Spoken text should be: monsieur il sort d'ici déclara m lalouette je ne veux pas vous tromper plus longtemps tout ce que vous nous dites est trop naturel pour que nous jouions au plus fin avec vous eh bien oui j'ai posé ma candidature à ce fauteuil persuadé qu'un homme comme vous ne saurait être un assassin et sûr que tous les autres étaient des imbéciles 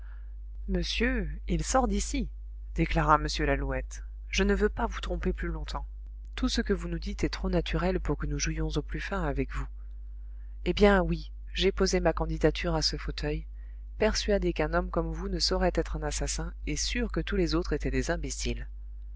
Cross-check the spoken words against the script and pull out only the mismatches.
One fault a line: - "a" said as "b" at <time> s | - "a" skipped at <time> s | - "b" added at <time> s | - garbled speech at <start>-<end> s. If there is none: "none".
none